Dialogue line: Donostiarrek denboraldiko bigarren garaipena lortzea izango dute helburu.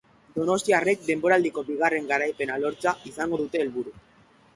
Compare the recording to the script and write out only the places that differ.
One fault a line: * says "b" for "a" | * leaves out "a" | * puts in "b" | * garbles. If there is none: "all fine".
all fine